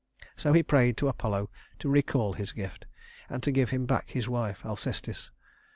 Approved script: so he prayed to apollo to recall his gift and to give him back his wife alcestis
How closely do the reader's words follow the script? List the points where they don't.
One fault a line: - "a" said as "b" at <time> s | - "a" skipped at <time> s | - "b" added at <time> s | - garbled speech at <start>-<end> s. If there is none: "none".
none